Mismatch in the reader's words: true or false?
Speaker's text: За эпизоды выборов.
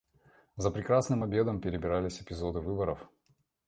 true